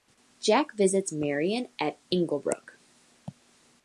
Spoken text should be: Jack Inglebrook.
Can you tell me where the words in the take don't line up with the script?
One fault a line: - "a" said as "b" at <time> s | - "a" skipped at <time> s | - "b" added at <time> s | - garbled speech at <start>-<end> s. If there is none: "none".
- "visits Marian at" added at 0.8 s